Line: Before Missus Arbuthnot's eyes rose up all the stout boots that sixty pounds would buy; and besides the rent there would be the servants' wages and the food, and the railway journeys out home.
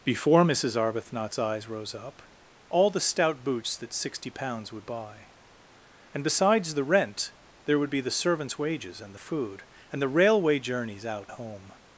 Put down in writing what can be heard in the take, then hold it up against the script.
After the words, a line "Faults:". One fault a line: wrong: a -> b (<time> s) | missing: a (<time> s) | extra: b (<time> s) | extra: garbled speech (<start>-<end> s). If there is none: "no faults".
Before Missus Arbuthnot's eyes rose up all the stout boots that sixty pounds would buy; and besides the rent there would be the servants' wages and the food, and the railway journeys out home.
Faults:
no faults